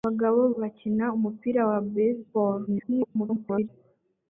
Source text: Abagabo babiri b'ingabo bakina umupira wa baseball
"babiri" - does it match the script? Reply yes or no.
no